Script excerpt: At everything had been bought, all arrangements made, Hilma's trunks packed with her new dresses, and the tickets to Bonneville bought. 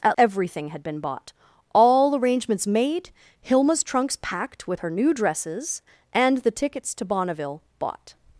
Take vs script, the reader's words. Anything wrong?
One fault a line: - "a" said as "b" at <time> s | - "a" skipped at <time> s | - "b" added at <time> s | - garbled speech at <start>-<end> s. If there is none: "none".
none